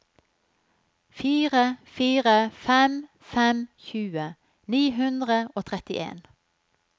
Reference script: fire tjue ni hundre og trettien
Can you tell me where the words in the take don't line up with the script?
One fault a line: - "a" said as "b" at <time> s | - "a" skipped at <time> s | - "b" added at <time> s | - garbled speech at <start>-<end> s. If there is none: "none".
- "fire fem fem" added at 1.8 s